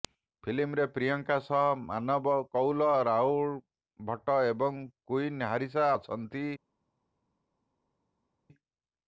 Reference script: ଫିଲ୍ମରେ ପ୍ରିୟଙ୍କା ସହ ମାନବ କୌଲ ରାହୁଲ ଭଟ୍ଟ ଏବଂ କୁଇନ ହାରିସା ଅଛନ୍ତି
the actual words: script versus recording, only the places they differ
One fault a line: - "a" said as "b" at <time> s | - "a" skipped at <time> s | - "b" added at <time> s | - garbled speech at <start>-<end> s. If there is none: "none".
none